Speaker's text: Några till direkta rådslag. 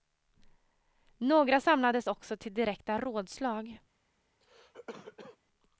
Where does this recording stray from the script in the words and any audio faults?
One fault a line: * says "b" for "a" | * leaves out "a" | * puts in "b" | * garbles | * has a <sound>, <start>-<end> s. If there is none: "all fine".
* puts in "samlades också"
* has a cough, 4.4-5.4 s